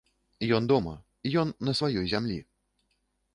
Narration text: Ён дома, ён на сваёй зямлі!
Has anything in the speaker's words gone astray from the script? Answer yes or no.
no